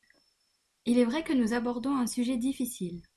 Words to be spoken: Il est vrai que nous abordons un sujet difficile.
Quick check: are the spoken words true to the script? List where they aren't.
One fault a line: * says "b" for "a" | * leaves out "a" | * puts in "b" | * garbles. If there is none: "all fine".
all fine